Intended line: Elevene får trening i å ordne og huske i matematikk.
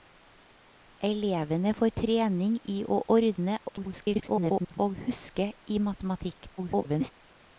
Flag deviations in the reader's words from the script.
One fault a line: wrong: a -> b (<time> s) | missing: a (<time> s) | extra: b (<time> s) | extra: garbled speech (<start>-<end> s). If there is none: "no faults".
extra: garbled speech (3.7-4.8 s)
extra: garbled speech (6.6-7.1 s)